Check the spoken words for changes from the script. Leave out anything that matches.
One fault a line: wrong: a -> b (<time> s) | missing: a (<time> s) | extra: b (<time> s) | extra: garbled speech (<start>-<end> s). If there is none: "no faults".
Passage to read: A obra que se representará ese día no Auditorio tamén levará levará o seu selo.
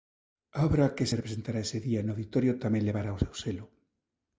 missing: levará (3.1 s)